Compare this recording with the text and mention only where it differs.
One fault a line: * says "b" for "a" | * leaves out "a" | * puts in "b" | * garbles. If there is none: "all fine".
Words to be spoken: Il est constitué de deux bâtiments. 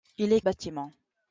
* leaves out "constitué de deux"